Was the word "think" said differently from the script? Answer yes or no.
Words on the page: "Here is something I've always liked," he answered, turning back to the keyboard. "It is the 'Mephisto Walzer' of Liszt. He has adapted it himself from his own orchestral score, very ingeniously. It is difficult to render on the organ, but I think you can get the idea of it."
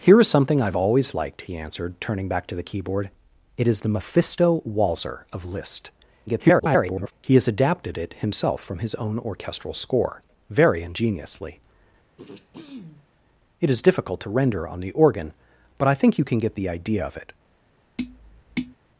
no